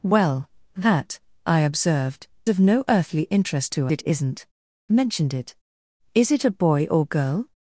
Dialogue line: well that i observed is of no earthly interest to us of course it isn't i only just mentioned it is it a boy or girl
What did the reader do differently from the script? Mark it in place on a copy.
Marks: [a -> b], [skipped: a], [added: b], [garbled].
well that i observed [skipped: is] of no earthly interest to [skipped: us of course] it isn't [skipped: i only just] mentioned it is it a boy or girl